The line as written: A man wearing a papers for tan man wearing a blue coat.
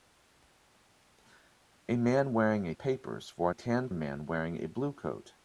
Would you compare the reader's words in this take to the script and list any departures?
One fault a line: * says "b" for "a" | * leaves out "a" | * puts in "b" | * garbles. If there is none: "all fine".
all fine